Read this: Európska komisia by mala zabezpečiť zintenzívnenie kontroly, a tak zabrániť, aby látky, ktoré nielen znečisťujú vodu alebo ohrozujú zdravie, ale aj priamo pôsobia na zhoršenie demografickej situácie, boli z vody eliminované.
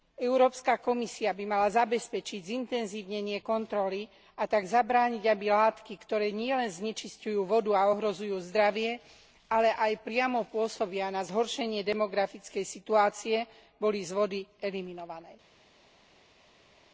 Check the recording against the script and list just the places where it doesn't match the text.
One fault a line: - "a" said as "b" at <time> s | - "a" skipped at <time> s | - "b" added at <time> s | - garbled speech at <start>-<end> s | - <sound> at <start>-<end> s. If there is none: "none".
- "alebo" said as "a" at 7.8 s